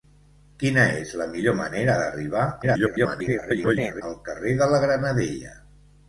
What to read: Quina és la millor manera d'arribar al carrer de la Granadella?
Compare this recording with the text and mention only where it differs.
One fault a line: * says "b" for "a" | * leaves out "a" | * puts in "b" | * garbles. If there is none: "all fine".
* garbles